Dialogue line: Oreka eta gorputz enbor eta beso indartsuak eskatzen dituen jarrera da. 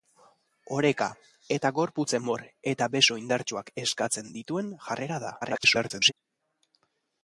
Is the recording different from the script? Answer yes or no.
yes